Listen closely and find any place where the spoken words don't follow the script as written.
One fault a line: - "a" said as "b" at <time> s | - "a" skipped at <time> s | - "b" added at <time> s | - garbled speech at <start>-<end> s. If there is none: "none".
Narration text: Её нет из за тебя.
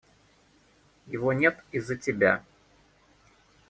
- "Её" said as "Его" at 1.1 s